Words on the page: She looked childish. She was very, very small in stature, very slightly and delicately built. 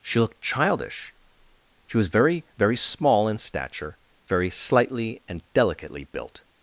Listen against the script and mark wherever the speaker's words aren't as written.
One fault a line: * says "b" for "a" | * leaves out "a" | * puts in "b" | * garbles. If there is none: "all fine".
all fine